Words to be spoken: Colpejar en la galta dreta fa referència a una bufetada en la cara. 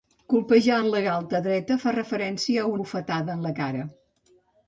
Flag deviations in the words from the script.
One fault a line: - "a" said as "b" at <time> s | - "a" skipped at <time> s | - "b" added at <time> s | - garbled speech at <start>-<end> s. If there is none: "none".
- "una" skipped at 2.7 s